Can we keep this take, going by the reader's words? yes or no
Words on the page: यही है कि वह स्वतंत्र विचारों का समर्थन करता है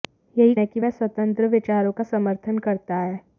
yes